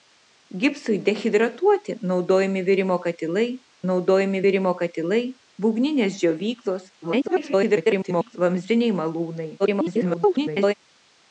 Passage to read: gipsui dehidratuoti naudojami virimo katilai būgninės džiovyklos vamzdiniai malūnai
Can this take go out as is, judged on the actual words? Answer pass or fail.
fail